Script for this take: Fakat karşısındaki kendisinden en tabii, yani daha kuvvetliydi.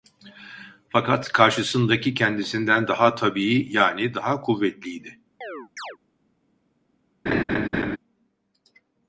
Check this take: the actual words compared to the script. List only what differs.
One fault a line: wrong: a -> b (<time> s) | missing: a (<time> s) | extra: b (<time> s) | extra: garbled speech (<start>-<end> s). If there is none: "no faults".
wrong: en -> daha (2.9 s)